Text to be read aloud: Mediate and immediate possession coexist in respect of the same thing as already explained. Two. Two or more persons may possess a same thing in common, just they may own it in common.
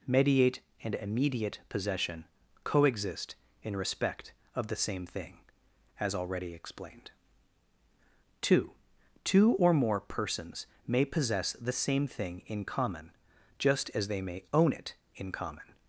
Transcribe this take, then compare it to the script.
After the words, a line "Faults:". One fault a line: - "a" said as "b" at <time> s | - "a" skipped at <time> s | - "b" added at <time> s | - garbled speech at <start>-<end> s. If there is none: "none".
Mediate and immediate possession coexist in respect of the same thing as already explained. Two. Two or more persons may possess the same thing in common, just as they may own it in common.
Faults:
- "a" said as "the" at 11.5 s
- "as" added at 13.9 s